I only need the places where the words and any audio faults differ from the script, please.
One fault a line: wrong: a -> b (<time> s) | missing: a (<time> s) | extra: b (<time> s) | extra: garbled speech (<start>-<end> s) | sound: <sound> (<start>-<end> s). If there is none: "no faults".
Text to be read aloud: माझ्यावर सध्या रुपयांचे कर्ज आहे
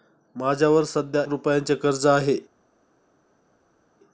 no faults